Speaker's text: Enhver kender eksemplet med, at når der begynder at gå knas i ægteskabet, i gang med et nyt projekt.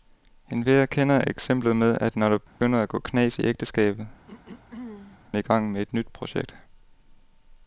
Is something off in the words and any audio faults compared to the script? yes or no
yes